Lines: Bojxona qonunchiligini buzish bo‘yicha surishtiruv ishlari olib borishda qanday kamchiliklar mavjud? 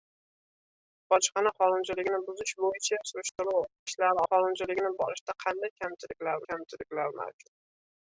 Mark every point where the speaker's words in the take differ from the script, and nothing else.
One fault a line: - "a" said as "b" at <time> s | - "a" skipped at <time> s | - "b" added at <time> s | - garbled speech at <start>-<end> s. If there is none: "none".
- "olib" said as "qonunchiligini" at 4.3 s
- "kamchiliklar" added at 6.5 s